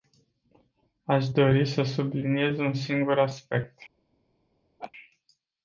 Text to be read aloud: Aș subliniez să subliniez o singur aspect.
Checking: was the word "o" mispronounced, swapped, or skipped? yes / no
yes